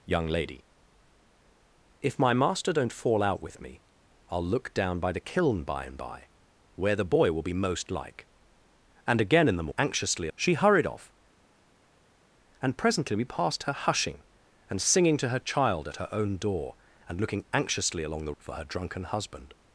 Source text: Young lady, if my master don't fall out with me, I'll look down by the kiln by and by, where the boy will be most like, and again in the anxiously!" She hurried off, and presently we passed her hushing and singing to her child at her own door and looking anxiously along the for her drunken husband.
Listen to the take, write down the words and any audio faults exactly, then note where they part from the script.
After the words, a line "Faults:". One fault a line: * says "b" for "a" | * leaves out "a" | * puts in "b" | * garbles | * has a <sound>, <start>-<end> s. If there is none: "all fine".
Young lady, if my master don't fall out with me, I'll look down by the kiln by and by, where the boy will be most like, and again in the anxiously!" She hurried off, and presently we passed her hushing and singing to her child at her own door and looking anxiously along the for her drunken husband.
Faults:
all fine